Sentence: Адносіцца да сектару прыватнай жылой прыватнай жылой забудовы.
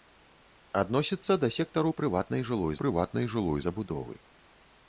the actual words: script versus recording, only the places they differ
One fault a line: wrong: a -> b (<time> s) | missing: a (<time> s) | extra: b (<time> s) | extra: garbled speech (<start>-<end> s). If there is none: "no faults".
no faults